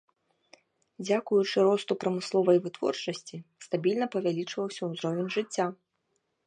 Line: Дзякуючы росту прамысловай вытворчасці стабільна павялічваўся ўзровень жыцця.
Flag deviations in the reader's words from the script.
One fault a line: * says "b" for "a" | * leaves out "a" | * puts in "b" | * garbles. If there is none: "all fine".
all fine